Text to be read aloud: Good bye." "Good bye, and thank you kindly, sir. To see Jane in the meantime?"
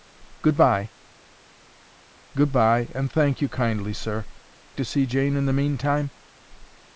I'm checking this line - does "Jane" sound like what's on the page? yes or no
yes